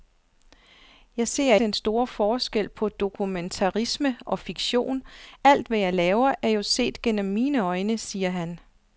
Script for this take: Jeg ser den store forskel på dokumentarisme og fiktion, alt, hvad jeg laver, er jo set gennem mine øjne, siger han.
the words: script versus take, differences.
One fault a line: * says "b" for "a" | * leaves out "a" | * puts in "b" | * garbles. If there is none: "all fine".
all fine